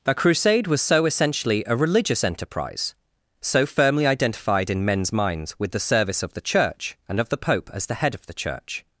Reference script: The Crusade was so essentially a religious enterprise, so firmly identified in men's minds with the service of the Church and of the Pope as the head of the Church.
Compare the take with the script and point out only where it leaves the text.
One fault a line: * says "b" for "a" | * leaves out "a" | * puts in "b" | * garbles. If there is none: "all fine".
all fine